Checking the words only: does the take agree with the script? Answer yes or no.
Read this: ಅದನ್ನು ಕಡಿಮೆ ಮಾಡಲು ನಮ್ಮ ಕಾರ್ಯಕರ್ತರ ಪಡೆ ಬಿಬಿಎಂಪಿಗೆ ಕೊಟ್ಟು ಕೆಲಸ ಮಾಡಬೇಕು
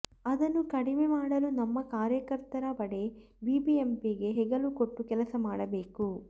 no